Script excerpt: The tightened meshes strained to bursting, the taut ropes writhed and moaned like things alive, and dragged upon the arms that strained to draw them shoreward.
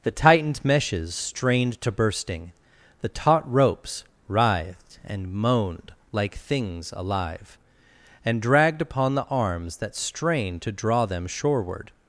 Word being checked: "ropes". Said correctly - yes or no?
yes